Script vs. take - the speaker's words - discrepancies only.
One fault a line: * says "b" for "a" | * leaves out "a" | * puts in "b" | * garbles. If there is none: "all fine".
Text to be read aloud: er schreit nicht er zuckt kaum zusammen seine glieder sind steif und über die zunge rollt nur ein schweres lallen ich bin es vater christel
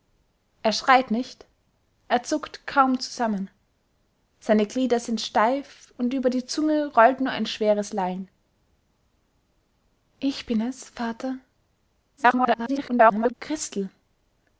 * garbles